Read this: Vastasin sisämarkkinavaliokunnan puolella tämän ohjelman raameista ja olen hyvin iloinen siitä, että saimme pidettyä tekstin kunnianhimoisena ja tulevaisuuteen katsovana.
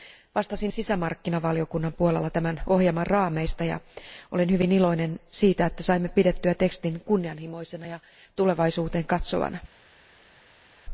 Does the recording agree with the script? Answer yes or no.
yes